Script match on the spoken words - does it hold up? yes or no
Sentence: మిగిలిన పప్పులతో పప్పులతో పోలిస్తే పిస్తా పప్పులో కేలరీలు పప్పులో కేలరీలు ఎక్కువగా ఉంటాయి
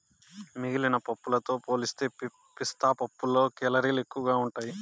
no